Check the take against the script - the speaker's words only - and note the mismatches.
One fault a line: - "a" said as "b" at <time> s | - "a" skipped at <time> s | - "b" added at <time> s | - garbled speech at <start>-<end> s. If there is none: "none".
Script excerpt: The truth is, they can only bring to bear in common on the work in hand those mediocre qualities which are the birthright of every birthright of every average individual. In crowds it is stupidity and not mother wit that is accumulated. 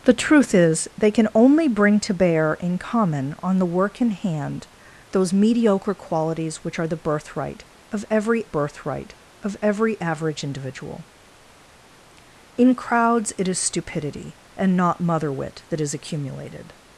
none